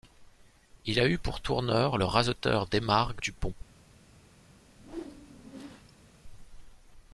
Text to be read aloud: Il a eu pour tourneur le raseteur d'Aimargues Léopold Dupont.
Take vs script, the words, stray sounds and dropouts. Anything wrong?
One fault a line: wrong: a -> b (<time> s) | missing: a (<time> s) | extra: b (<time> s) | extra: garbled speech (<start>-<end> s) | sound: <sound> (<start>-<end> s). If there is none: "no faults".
missing: Léopold (3.2 s)
sound: whoosh (4.7-6.1 s)